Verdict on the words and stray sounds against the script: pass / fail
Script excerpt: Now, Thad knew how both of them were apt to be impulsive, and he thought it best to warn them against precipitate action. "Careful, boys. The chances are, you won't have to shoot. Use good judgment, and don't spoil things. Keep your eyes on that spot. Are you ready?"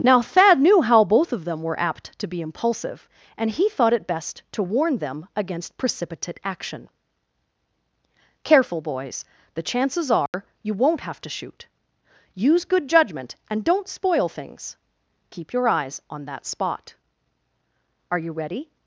fail